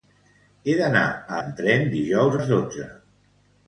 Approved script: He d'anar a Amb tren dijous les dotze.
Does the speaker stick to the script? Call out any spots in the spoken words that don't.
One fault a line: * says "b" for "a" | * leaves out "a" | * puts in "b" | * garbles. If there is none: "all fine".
all fine